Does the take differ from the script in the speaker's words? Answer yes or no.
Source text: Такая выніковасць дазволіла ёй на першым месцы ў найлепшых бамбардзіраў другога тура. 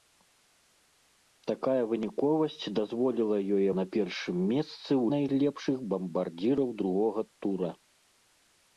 no